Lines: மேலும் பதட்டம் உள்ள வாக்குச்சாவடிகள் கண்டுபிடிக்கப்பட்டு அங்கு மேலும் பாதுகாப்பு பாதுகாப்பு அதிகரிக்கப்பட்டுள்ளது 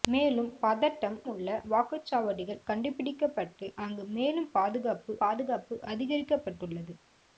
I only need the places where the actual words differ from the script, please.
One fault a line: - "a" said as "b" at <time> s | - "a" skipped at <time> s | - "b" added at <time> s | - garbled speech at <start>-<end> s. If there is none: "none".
none